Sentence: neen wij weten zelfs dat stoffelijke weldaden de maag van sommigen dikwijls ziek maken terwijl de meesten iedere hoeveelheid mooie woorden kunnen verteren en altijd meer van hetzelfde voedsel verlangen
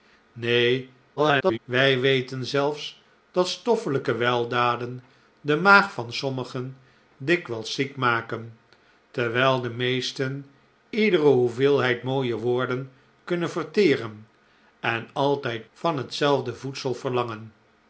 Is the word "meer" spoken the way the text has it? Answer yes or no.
no